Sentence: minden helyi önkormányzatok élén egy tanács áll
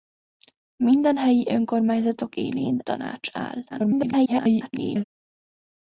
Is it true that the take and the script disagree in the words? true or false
true